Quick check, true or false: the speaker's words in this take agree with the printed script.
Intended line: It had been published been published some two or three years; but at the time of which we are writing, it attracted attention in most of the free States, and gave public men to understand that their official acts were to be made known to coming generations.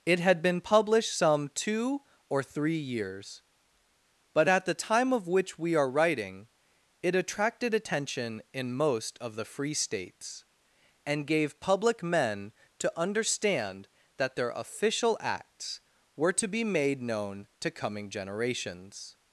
false